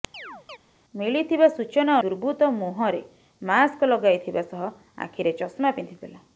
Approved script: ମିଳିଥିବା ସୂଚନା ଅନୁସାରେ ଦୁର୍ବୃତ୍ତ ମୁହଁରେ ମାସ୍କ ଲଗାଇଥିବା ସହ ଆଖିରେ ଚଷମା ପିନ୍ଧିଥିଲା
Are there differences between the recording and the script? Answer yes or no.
yes